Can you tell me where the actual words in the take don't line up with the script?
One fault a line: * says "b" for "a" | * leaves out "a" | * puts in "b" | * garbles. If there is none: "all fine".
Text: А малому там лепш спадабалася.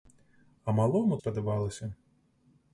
* leaves out "там лепш"